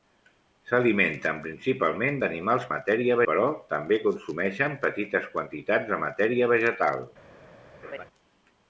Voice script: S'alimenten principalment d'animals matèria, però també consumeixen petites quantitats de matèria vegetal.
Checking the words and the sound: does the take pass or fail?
fail